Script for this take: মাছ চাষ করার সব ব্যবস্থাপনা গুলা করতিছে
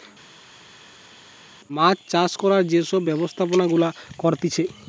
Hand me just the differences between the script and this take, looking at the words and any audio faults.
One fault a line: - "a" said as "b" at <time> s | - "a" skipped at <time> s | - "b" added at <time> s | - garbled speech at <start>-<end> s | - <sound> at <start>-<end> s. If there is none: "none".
- "যে" added at 2.7 s